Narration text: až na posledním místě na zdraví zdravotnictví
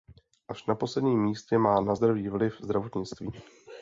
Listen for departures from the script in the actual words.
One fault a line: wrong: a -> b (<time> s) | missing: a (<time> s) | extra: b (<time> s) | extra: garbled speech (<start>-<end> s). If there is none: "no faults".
extra: má (1.6 s)
extra: vliv (2.3 s)